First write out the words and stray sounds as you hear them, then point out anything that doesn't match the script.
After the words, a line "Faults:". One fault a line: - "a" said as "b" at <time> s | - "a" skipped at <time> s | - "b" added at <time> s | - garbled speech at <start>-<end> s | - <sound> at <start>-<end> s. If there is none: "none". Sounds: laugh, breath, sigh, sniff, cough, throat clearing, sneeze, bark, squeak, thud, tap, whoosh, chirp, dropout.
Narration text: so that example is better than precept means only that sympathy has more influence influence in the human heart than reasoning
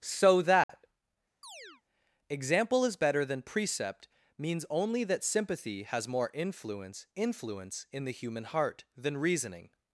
so that example is better than precept means only that sympathy has more influence influence in the human heart than reasoning
Faults:
- dropout at 0.6-0.7 s
- chirp at 1.4-1.8 s